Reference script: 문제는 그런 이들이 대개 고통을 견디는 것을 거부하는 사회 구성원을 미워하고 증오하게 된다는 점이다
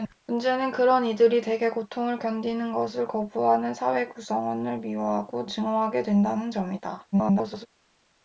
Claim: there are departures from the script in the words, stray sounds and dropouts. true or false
true